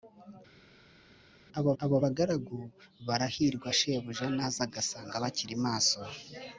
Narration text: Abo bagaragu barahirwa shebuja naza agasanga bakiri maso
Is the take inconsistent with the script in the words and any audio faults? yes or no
yes